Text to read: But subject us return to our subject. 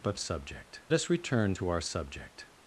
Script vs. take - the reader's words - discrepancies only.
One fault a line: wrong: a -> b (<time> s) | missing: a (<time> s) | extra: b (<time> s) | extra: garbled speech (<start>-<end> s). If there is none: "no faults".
no faults